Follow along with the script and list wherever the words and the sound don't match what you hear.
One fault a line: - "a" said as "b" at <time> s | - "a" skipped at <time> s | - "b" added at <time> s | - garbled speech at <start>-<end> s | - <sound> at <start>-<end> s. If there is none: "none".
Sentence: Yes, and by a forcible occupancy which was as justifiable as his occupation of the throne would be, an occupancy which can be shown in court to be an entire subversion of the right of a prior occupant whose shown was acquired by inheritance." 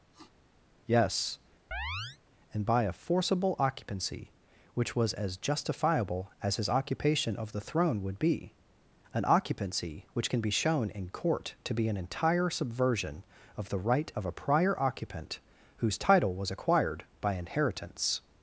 - sniff at 0.1-0.3 s
- chirp at 1.7-2.2 s
- "shown" said as "title" at 16.0 s